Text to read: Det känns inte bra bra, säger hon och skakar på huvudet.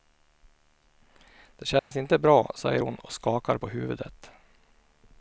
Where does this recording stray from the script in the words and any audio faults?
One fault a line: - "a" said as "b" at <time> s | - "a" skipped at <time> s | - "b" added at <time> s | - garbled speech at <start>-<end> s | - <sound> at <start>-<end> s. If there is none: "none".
- dropout at 1.8-1.9 s
- "bra" skipped at 2.5 s